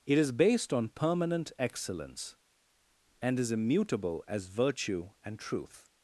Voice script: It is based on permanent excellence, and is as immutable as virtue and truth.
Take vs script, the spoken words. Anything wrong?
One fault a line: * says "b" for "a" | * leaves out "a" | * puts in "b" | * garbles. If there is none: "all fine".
* leaves out "as"